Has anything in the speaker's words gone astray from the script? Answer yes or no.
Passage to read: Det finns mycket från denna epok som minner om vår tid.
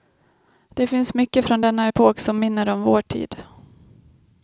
no